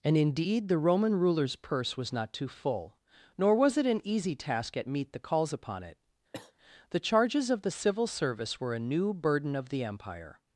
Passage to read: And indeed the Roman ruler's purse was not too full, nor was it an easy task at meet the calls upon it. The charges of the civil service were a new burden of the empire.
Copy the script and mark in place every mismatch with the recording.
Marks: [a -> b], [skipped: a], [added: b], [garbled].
And indeed the Roman ruler's purse was not too full, nor was it an easy task at meet the calls upon it. The charges of the civil service were a new burden of the empire.